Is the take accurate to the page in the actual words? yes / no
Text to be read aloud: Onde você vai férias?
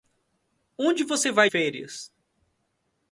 yes